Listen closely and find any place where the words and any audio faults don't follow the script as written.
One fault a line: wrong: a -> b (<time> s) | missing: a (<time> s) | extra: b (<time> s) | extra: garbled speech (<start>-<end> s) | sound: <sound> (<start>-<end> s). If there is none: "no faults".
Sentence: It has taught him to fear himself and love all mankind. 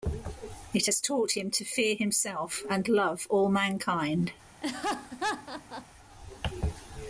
sound: laugh (4.6-5.9 s)